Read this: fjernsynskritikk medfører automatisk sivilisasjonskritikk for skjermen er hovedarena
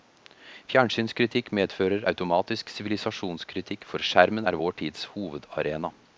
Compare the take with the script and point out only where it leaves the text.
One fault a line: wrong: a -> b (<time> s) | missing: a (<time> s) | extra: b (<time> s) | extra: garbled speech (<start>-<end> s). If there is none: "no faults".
extra: vår tids (4.6 s)